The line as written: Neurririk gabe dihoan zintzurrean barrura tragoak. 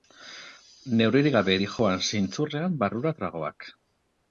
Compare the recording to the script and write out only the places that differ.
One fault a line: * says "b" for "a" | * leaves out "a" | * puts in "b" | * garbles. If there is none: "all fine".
all fine